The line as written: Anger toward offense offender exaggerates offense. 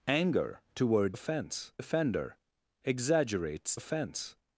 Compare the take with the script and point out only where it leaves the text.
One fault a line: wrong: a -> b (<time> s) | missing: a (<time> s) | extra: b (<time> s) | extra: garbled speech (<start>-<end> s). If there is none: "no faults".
no faults